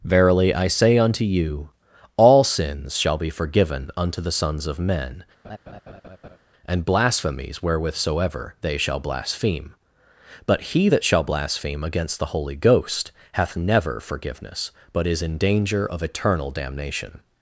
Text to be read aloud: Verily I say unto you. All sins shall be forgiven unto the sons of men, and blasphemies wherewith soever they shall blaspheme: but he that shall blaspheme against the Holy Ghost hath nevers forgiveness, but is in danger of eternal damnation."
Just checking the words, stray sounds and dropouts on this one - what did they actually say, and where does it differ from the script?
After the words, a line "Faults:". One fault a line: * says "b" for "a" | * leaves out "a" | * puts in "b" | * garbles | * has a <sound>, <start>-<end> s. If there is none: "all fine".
Verily I say unto you. All sins shall be forgiven unto the sons of men, and blasphemies wherewith soever they shall blaspheme: but he that shall blaspheme against the Holy Ghost hath never forgiveness, but is in danger of eternal damnation."
Faults:
* has a laugh, 5.4-6.4 s
* says "never" for "nevers"